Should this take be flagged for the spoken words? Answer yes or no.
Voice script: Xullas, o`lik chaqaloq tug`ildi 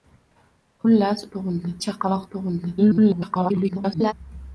yes